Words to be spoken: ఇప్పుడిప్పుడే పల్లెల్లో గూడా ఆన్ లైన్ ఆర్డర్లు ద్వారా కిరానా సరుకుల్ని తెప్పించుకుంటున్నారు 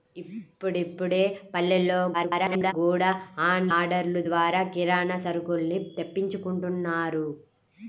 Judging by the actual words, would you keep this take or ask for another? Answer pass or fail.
fail